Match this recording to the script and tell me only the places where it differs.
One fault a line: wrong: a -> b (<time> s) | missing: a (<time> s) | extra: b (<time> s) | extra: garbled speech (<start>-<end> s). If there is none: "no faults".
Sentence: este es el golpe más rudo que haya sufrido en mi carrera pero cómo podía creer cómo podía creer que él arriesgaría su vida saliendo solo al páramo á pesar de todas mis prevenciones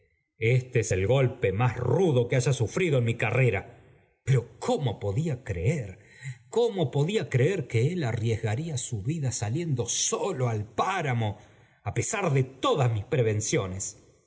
no faults